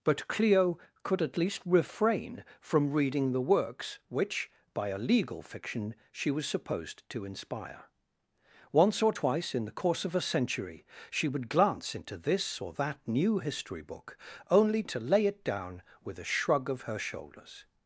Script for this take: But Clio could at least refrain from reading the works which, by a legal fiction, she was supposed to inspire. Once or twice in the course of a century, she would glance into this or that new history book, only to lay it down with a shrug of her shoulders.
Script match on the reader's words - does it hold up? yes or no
yes